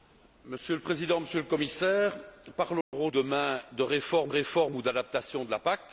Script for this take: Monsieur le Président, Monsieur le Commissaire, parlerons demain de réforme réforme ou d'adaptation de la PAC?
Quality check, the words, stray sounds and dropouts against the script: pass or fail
fail